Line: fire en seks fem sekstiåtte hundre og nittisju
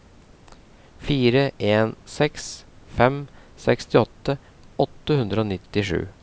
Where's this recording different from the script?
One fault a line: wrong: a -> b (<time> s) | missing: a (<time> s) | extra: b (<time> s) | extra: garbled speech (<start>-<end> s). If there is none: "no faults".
extra: åtte (4.9 s)